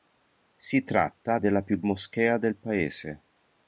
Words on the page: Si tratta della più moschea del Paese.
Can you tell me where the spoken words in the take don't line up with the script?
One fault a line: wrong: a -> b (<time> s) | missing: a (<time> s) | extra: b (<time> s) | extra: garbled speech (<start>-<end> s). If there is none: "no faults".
no faults